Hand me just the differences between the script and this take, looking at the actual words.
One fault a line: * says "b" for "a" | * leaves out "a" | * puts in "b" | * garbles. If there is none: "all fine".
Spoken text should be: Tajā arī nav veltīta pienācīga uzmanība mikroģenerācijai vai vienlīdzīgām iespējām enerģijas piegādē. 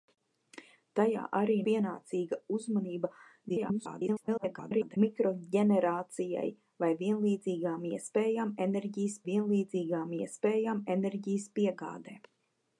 * leaves out "nav veltīta"
* garbles
* puts in "vienlīdzīgām iespējām enerģijas"